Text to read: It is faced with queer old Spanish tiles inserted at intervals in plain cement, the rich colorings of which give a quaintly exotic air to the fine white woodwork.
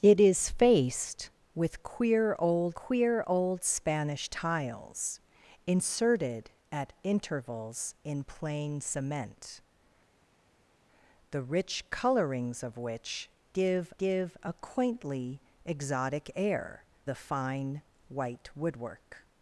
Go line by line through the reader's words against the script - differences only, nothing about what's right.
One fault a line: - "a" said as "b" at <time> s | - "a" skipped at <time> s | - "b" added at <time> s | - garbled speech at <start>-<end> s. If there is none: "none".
- "queer old" added at 2.7 s
- "give" added at 14.0 s
- "to" skipped at 16.8 s